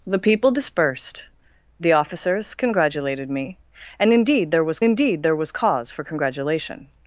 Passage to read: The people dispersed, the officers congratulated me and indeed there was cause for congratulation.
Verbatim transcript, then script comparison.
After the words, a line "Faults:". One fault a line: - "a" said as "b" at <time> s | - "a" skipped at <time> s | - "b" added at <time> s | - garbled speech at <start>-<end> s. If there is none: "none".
The people dispersed, the officers congratulated me and indeed there was indeed there was cause for congratulation.
Faults:
- "indeed there was" added at 4.8 s